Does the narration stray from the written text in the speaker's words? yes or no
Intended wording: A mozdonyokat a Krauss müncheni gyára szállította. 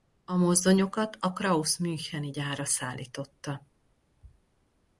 no